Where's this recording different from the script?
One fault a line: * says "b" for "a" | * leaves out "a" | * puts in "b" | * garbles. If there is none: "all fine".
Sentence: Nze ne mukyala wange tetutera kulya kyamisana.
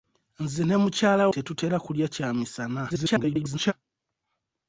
* leaves out "wange"
* garbles